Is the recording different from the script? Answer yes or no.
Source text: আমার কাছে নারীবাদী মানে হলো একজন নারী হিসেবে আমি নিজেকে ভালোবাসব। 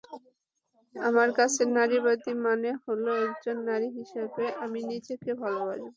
no